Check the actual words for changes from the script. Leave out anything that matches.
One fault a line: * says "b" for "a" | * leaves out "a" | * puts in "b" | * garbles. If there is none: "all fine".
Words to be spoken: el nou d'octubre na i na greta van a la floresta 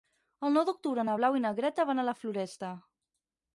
* puts in "blau"